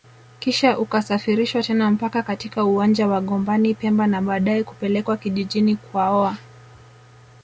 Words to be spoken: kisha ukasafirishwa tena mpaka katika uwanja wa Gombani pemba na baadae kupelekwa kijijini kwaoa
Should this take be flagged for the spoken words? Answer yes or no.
no